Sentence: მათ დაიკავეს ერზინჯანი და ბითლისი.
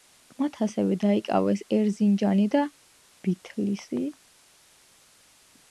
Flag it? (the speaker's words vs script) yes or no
yes